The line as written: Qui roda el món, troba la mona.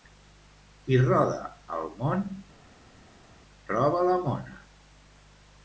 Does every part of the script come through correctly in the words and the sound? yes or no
yes